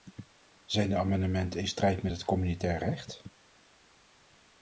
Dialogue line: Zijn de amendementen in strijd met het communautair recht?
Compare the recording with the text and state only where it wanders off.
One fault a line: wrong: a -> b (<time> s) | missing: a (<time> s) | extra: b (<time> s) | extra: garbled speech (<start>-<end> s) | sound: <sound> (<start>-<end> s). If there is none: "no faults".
no faults